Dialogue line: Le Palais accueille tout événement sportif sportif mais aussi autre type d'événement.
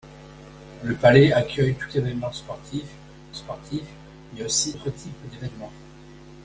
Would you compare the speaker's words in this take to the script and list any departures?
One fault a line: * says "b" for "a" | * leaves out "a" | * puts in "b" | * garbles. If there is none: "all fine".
all fine